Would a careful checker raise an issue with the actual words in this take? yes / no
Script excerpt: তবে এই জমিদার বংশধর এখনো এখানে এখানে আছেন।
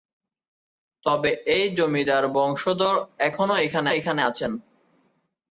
no